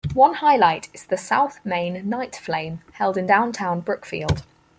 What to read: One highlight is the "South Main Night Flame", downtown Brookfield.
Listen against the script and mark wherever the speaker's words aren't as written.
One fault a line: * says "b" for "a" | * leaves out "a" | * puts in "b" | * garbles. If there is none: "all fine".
* puts in "held in"